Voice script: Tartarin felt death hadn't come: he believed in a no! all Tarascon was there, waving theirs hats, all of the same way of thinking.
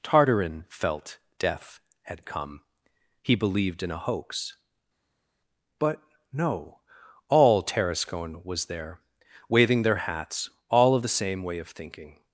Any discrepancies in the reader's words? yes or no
yes